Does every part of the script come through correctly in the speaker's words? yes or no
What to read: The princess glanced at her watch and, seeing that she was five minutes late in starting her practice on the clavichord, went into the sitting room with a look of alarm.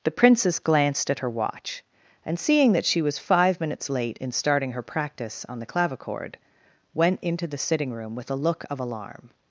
yes